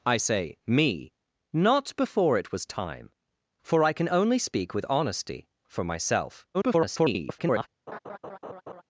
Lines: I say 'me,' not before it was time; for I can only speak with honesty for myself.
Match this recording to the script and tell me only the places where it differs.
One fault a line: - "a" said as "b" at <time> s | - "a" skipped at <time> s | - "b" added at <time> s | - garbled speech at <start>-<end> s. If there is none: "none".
- garbled speech at 6.5-7.7 s